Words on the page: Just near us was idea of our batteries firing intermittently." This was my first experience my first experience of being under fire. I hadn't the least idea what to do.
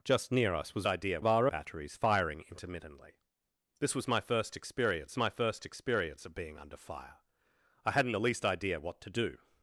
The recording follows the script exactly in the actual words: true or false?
true